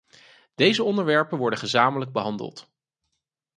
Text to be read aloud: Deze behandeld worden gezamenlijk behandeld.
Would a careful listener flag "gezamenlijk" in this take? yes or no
no